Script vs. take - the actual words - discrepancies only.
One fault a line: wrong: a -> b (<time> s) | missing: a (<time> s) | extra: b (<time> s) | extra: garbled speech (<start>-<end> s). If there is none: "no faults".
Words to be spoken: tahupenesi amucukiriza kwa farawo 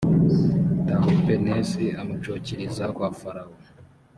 no faults